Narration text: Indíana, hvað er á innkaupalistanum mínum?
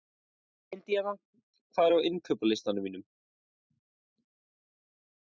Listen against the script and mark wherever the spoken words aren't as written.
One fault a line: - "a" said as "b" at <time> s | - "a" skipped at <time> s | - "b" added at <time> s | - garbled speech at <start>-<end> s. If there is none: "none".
none